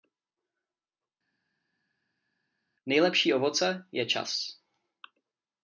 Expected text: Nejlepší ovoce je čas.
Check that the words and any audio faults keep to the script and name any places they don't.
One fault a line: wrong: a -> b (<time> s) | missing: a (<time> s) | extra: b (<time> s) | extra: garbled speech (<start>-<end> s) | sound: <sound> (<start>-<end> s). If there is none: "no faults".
no faults